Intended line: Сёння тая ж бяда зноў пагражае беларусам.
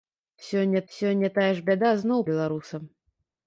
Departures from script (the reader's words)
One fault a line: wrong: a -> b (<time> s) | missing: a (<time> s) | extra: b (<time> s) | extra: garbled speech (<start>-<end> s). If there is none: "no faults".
extra: сёння (0.9 s)
missing: пагражае (2.3 s)